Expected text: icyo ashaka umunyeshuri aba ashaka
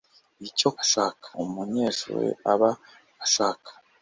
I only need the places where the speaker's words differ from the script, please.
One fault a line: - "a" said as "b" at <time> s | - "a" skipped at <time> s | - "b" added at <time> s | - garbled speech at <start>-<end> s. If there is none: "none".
none